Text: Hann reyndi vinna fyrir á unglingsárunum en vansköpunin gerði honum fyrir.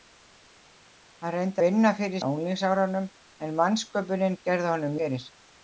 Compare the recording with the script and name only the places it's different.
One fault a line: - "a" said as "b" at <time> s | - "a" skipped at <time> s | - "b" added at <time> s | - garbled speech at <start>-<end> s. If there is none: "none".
none